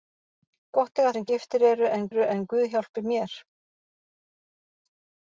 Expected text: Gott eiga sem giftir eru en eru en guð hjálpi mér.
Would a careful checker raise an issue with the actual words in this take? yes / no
no